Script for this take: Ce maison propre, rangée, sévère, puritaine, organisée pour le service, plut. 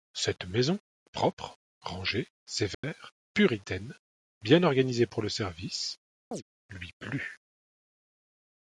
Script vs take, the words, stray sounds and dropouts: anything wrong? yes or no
yes